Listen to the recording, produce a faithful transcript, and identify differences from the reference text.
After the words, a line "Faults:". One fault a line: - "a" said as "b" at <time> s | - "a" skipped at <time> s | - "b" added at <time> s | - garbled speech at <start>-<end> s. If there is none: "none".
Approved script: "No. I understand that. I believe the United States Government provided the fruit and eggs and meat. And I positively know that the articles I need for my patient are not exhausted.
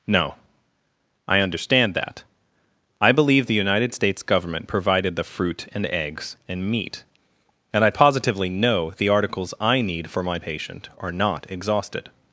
"No. I understand that. I believe the United States Government provided the fruit and eggs and meat. And I positively know the articles I need for my patient are not exhausted.
Faults:
- "that" skipped at 8.9 s